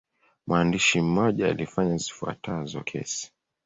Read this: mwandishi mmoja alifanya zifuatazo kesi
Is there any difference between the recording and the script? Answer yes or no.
no